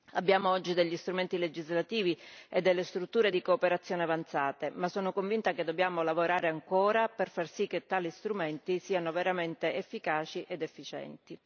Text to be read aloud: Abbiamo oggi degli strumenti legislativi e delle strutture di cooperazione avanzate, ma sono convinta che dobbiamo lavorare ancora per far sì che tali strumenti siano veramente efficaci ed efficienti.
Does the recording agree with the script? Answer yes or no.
yes